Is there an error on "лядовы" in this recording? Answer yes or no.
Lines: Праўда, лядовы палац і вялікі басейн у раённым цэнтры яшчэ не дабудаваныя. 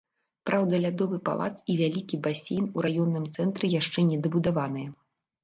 no